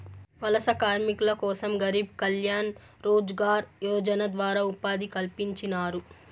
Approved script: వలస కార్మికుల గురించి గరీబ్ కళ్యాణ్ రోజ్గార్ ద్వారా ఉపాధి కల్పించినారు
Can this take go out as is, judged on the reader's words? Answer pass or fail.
fail